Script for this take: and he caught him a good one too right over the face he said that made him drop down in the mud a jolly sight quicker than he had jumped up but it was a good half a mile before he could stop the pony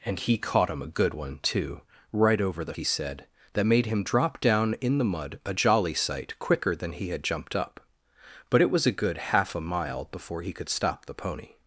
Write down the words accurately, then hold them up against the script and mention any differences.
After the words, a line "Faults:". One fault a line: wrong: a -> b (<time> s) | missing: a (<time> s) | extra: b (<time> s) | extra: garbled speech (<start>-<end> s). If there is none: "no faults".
and he caught him a good one too right over the he said that made him drop down in the mud a jolly sight quicker than he had jumped up but it was a good half a mile before he could stop the pony
Faults:
missing: face (2.7 s)